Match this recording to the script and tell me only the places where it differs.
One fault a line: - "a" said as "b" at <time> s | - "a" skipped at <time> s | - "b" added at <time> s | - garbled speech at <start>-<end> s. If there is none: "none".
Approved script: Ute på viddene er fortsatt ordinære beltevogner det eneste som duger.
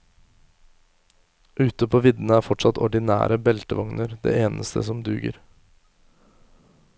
none